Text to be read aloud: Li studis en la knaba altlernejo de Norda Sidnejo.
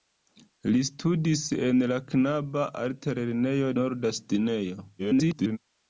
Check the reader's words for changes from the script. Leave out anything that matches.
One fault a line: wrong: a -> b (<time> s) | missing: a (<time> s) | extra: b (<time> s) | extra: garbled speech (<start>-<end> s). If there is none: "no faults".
missing: de (3.7 s)
extra: garbled speech (5.0-5.6 s)